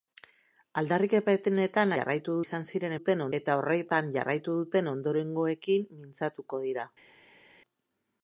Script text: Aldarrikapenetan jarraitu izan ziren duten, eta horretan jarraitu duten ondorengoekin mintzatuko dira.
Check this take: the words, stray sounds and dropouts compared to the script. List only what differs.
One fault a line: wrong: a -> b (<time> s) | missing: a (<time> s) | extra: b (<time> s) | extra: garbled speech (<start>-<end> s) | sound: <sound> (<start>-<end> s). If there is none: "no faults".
no faults